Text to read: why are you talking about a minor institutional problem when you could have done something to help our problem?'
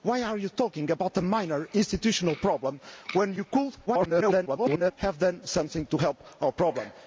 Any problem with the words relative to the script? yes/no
yes